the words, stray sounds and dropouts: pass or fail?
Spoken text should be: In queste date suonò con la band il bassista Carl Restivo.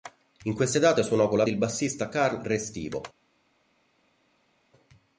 fail